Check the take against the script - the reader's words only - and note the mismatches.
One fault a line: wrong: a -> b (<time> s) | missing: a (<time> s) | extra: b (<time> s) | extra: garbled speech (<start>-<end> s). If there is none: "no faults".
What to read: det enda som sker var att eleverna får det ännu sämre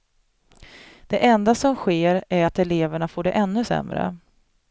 wrong: var -> är (2.3 s)